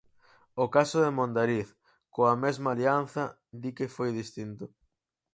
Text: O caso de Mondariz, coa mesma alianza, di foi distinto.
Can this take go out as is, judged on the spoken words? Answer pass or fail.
fail